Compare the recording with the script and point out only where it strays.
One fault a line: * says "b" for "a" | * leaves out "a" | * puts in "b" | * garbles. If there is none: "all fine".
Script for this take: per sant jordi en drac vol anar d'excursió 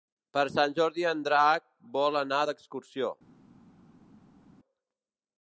all fine